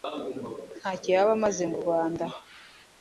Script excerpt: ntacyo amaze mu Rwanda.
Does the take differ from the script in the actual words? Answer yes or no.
yes